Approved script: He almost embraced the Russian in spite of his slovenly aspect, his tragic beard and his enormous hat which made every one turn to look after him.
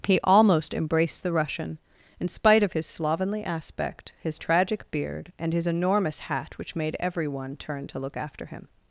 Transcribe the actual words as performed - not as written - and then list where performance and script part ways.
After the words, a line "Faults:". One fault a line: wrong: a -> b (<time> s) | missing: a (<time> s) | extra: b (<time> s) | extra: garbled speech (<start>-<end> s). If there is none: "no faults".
He almost embraced the Russian in spite of his slovenly aspect, his tragic beard and his enormous hat which made every one turn to look after him.
Faults:
no faults